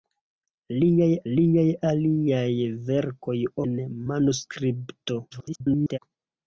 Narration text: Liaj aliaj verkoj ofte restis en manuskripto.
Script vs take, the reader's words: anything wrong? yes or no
yes